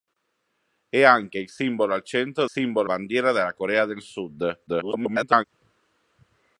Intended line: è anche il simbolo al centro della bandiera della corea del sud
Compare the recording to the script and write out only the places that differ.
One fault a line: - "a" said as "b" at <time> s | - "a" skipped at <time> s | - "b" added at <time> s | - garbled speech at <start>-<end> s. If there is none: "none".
- "della" said as "simbolo" at 2.5 s
- garbled speech at 4.7-5.4 s